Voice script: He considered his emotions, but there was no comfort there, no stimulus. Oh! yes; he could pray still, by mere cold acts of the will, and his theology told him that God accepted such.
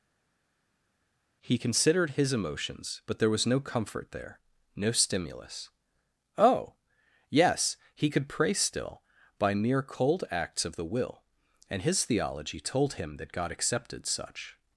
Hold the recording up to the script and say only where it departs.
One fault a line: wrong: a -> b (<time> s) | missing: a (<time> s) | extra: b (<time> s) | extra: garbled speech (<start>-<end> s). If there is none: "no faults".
no faults